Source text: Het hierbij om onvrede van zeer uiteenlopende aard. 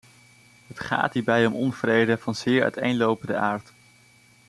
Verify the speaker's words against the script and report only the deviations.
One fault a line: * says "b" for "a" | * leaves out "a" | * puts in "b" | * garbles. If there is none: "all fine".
* puts in "gaat"